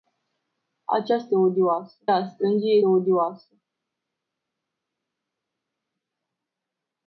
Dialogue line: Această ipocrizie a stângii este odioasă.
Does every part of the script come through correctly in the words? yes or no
no